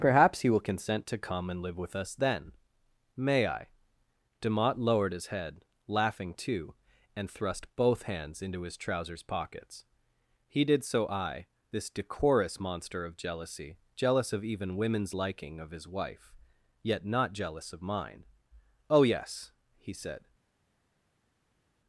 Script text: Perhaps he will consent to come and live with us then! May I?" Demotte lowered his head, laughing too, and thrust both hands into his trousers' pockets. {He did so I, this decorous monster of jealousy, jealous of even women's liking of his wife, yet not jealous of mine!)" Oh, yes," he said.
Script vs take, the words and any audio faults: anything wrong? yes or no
no